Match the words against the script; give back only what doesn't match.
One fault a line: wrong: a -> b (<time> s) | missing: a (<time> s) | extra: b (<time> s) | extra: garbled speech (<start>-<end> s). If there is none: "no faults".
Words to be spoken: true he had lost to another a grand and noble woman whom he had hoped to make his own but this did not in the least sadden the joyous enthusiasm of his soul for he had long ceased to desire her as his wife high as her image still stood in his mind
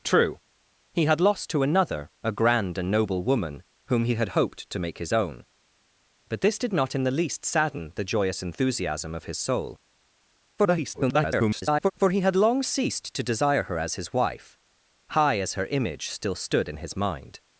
extra: garbled speech (10.6-11.9 s)